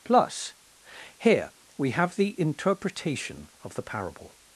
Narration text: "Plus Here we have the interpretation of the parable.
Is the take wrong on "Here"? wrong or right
right